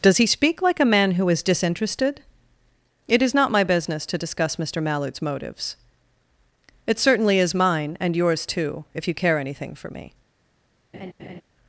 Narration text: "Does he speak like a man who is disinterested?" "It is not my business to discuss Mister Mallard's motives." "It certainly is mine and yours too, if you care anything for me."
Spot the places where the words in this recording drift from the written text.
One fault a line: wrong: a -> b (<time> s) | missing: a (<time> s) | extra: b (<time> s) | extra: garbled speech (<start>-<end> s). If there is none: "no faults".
no faults